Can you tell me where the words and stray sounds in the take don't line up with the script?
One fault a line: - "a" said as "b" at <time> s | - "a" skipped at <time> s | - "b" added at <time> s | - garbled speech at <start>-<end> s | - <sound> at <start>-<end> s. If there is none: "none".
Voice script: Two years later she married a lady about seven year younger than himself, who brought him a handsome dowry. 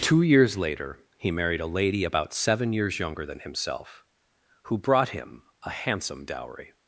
- "she" said as "he" at 1.2 s
- "year" said as "years" at 2.7 s